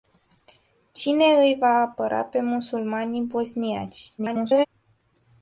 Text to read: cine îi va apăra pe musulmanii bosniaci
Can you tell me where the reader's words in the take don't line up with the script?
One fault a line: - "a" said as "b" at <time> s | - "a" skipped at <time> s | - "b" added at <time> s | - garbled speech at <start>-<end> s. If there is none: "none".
- garbled speech at 4.2-4.7 s